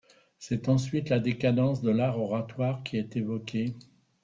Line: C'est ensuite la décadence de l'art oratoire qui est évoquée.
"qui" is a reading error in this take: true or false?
false